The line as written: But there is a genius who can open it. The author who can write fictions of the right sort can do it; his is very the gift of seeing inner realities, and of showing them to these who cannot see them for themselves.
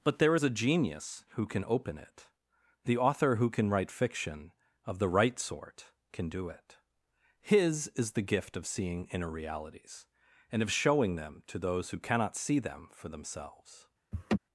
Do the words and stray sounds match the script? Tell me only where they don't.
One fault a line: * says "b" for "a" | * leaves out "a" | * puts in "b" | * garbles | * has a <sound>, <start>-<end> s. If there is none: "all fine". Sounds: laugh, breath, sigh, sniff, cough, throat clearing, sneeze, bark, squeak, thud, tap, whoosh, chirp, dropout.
* says "fiction" for "fictions"
* leaves out "very"
* says "those" for "these"
* has a laugh, 14.1-14.4 s